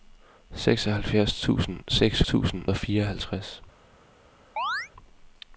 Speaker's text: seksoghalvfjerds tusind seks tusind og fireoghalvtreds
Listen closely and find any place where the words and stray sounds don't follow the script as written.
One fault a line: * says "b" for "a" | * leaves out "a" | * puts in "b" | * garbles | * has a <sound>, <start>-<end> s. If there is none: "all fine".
* has a chirp, 4.6-4.9 s